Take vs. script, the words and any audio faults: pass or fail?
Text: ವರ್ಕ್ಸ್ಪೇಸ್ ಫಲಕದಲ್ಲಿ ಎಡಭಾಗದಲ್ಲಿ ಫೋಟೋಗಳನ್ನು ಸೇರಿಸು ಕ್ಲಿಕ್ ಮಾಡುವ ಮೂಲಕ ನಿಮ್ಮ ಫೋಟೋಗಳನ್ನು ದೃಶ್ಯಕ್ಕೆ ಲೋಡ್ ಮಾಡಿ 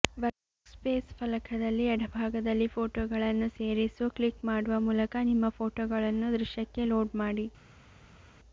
pass